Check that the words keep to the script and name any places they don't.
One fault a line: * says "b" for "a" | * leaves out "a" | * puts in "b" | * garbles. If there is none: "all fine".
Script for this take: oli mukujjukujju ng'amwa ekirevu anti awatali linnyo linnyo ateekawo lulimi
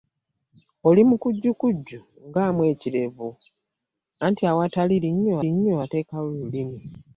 all fine